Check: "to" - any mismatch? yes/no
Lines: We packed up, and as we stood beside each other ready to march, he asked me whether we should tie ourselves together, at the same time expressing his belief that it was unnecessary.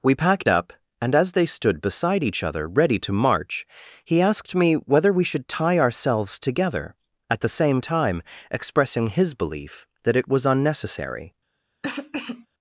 no